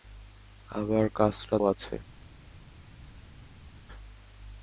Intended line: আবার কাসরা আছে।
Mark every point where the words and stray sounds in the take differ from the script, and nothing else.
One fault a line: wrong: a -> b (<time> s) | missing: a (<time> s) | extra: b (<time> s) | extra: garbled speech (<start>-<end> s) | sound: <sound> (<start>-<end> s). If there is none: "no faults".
no faults